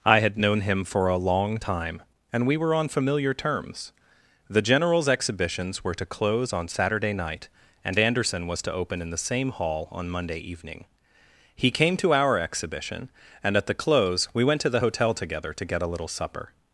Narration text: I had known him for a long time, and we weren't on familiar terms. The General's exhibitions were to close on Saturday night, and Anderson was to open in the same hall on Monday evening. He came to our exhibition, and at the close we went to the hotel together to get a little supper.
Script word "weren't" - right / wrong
wrong